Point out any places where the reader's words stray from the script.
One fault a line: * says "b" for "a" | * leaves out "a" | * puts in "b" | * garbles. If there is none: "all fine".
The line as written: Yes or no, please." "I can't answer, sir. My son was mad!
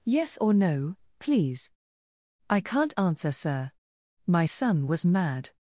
all fine